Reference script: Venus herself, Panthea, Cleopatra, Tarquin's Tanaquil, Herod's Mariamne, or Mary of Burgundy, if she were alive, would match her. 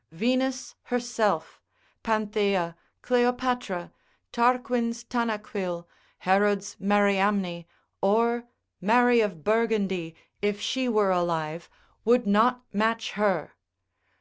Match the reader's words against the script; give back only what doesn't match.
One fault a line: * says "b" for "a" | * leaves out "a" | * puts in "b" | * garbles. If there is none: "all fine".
* puts in "not"